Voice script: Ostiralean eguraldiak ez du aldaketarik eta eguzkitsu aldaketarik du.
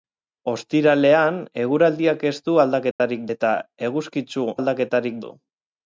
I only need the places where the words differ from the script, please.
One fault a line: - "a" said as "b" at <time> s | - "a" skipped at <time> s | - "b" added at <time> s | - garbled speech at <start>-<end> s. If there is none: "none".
none